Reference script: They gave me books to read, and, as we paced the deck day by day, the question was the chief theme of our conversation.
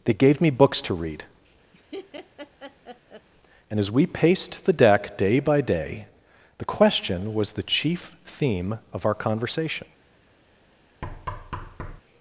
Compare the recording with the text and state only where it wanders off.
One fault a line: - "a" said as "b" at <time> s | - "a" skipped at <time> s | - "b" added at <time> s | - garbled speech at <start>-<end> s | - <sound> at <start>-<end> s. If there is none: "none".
- laugh at 1.7-3.3 s
- thud at 11.0-12.0 s